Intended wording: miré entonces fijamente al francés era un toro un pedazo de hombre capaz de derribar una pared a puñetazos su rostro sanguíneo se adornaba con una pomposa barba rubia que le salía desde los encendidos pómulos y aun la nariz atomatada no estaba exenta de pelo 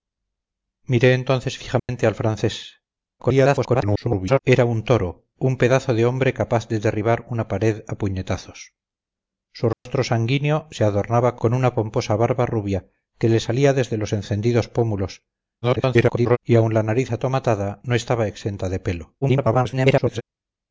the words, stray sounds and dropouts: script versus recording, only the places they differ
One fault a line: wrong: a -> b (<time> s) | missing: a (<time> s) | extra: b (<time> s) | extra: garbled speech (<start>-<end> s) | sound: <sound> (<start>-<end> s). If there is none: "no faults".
sound: dropout (1.8-1.9 s)
extra: garbled speech (3.2-4.4 s)
sound: dropout (9.7-9.9 s)
extra: garbled speech (15.6-16.4 s)
extra: garbled speech (19.2-20.2 s)